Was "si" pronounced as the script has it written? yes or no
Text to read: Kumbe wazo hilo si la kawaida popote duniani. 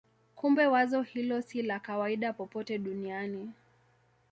yes